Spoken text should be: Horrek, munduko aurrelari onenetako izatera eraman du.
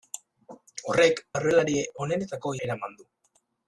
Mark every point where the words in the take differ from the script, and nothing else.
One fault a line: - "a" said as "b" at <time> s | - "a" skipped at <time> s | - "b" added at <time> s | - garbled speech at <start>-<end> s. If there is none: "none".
- "munduko" skipped at 1.2 s
- "izatera" skipped at 2.6 s